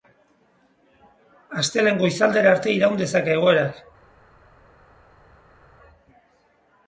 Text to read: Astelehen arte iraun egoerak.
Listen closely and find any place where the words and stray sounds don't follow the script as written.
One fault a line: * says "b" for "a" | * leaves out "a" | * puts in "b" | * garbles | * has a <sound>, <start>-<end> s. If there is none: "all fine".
* puts in "goizaldera"
* puts in "dezake"